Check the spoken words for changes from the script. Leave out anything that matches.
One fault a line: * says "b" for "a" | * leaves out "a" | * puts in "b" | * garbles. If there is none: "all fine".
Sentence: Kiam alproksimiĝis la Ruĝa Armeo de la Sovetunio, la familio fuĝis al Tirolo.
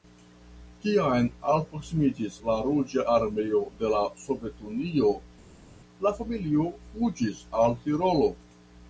all fine